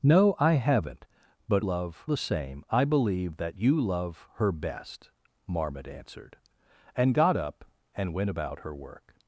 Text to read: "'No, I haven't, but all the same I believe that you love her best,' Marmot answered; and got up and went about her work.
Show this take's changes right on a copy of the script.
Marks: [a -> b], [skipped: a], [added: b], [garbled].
"'No, I haven't, but [all -> love] the same I believe that you love her best,' Marmot answered; and got up and went about her work.